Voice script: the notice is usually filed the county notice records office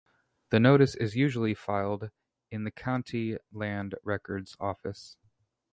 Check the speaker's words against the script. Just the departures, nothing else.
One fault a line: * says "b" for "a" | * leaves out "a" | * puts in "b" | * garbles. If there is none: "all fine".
* puts in "in"
* says "land" for "notice"